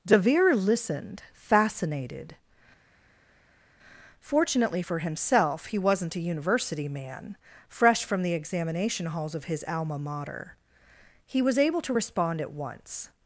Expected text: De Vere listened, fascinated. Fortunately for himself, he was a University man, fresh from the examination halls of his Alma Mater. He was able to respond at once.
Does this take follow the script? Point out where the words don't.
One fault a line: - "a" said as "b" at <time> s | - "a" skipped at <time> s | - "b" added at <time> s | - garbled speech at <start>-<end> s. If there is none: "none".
- "was" said as "wasn't" at 5.8 s